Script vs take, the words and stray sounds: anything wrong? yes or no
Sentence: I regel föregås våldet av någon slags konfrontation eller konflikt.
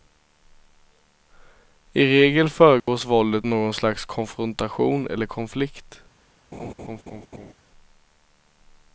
yes